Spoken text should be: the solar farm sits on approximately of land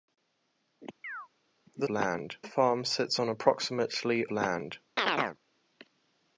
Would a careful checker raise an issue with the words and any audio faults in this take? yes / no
yes